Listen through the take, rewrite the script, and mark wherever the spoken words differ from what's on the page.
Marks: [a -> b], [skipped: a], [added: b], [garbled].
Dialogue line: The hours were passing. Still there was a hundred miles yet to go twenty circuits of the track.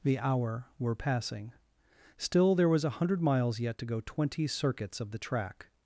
The [hours -> hour] were passing. Still there was a hundred miles yet to go twenty circuits of the track.